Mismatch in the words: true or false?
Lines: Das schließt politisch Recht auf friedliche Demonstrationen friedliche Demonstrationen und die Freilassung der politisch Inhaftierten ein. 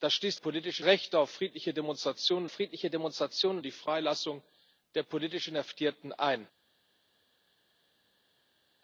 false